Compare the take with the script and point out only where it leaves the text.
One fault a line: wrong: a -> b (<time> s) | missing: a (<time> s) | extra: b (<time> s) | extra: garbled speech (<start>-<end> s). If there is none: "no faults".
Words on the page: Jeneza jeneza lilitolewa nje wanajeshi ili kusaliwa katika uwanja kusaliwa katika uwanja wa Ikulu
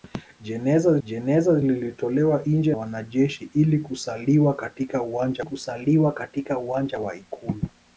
no faults